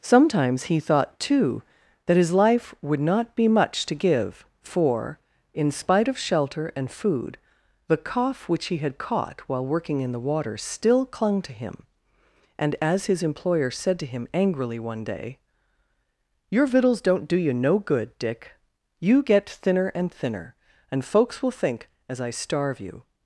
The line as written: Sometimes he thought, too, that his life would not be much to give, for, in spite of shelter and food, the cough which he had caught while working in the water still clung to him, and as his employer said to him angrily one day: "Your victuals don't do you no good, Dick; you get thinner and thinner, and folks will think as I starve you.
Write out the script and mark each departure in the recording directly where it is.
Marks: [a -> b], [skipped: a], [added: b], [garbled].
Sometimes he thought, too, that his life would not be much to give, for, in spite of shelter and food, the cough which he had caught while working in the water still clung to him, and as his employer said to him angrily one day: "Your victuals don't do you no good, Dick; you get thinner and thinner, and folks will think as I starve you.